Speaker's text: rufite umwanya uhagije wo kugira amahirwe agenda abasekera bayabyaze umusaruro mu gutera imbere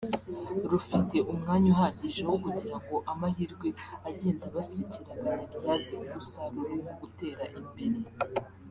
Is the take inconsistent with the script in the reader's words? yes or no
yes